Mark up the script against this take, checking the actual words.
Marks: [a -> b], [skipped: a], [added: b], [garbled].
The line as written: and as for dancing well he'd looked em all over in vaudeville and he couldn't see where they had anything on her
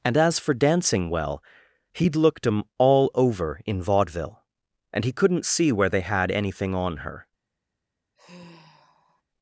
and as for dancing well he'd looked em all over in vaudeville and he couldn't see where they had anything on her